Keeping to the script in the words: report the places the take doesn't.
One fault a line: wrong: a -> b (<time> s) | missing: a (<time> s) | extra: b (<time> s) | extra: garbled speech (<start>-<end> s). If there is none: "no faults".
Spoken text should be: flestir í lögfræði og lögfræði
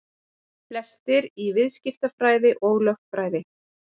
wrong: lögfræði -> viðskiptafræði (1.6 s)